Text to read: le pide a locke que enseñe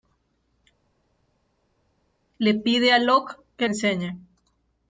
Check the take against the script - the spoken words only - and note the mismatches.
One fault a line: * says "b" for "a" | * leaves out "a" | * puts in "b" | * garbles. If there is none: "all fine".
all fine